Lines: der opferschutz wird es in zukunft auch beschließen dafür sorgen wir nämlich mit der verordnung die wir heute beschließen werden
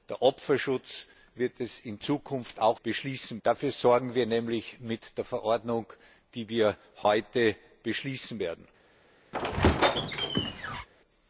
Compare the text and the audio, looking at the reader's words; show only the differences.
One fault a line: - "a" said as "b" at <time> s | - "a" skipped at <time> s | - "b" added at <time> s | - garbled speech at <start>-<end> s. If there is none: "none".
none